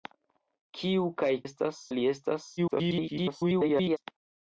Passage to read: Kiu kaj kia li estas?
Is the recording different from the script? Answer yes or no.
yes